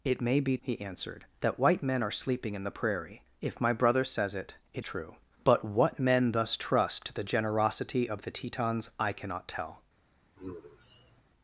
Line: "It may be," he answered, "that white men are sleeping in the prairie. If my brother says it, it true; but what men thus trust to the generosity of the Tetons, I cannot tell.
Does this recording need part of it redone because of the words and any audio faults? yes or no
yes